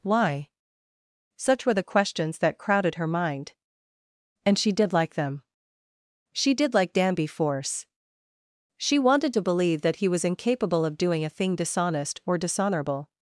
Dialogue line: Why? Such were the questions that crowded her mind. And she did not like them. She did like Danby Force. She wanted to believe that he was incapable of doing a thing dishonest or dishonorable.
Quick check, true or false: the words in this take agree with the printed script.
false